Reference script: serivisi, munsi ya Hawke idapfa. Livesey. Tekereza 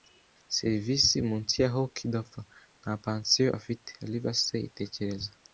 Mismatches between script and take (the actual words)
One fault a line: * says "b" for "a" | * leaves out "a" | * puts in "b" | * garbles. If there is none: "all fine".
* puts in "Nta pansiyo afite"